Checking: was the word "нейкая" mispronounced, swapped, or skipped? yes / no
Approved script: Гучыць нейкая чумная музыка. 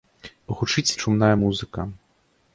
yes